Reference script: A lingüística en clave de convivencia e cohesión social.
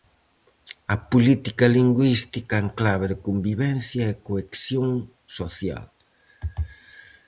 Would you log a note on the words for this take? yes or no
yes